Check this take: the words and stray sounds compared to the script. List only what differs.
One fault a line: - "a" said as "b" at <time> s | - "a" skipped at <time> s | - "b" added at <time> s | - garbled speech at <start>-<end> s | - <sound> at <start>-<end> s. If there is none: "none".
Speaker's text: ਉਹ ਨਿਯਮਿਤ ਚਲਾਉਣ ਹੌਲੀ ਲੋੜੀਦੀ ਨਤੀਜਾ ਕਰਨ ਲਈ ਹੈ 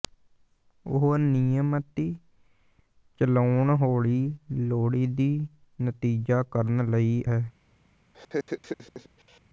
- laugh at 8.1-9.4 s